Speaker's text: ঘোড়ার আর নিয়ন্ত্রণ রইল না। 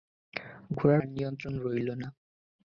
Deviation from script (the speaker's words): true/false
false